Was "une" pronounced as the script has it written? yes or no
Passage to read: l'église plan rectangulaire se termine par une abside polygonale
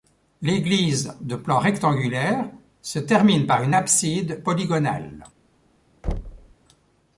yes